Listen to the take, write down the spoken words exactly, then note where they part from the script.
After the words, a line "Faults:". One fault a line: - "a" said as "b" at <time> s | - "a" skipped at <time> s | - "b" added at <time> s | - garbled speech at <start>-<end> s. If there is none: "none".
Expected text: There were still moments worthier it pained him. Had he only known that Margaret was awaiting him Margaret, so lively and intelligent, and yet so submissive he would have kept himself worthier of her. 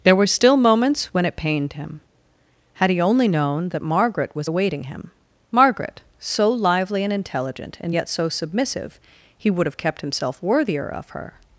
There were still moments when it pained him. Had he only known that Margaret was awaiting him Margaret, so lively and intelligent, and yet so submissive he would have kept himself worthier of her.
Faults:
- "worthier" said as "when" at 1.1 s